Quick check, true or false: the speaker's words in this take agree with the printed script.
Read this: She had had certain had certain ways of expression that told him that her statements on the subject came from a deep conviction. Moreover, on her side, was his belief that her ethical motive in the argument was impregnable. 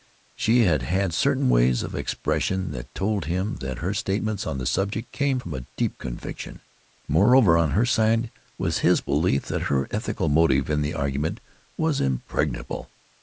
false